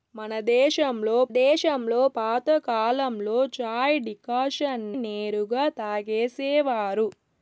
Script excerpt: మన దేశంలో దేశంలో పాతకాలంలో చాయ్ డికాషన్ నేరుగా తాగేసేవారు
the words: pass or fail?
pass